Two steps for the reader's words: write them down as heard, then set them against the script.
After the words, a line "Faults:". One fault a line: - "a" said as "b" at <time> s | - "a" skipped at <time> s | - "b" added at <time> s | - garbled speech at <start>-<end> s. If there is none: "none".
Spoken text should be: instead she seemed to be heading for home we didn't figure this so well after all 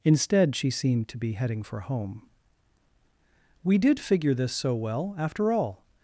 instead she seemed to be heading for home we did figure this so well after all
Faults:
- "didn't" said as "did" at 3.8 s